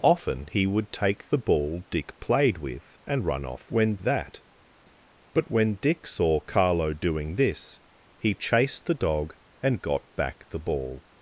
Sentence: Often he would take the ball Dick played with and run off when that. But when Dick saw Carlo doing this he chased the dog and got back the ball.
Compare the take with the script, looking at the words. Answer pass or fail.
pass